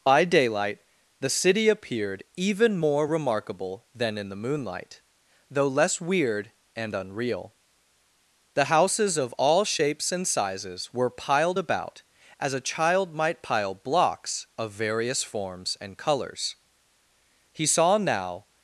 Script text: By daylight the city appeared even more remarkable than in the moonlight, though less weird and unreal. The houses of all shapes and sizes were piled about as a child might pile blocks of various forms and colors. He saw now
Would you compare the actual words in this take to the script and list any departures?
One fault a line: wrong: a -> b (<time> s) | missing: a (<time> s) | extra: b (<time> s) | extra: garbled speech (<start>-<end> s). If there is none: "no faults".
no faults